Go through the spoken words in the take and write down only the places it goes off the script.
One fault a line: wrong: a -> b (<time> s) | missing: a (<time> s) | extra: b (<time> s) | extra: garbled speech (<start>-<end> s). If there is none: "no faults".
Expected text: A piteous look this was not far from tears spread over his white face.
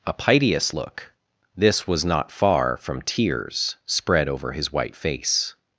no faults